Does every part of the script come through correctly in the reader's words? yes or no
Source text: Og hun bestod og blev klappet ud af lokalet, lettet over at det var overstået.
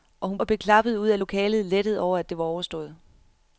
no